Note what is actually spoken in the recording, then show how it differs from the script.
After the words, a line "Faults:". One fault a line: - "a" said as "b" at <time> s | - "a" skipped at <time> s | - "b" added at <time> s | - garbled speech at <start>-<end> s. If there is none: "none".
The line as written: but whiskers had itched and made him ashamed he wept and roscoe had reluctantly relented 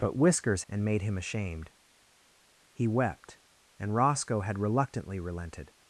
but whiskers and made him ashamed he wept and roscoe had reluctantly relented
Faults:
- "had itched" skipped at 0.6 s